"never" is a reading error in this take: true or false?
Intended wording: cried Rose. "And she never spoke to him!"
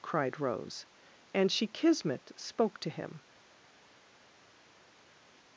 true